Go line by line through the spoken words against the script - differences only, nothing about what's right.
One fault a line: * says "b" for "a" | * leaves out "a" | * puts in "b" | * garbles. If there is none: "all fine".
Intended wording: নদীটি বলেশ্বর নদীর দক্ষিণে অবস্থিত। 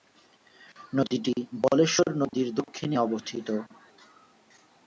all fine